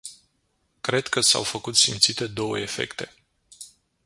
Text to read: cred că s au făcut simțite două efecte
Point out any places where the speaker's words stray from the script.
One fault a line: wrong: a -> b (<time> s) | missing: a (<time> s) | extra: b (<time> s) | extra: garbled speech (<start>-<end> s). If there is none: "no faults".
no faults